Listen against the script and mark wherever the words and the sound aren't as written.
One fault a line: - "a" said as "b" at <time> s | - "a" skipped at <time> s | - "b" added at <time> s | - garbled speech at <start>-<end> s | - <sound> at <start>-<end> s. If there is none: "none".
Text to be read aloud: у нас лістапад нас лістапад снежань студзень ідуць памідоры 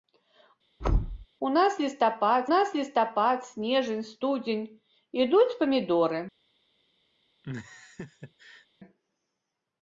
- thud at 0.8-1.3 s
- laugh at 7.4-8.7 s